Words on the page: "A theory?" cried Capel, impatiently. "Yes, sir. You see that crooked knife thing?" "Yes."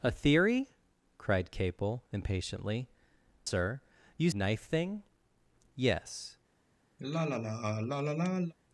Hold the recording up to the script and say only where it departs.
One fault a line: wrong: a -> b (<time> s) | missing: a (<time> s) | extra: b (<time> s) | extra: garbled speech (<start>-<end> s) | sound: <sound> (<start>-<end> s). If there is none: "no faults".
missing: Yes (2.9 s)
missing: see that crooked (4.3 s)
sound: sigh (7.0-8.5 s)